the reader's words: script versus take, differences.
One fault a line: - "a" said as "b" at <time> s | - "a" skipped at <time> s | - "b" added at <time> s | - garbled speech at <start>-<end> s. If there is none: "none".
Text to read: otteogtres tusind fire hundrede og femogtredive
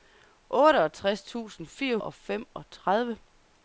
- "hundrede" skipped at 2.0 s